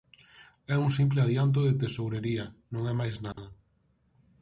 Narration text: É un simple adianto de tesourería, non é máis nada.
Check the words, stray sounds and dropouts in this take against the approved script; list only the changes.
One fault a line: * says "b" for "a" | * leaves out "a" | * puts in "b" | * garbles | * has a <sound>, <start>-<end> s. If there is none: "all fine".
* has a dropout, 3.3-3.4 s